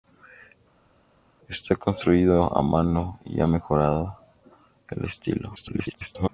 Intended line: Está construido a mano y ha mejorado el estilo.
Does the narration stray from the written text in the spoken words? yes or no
yes